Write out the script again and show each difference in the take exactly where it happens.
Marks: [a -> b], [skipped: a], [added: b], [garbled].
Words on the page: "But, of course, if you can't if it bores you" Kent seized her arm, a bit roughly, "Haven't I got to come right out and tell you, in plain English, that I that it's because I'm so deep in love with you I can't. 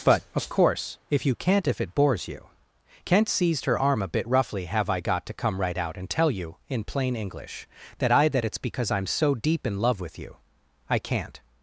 "But, of course, if you can't if it bores you" Kent seized her arm, a bit roughly, ["Haven't -> Have] I got to come right out and tell you, in plain English, that I that it's because I'm so deep in love with you I can't.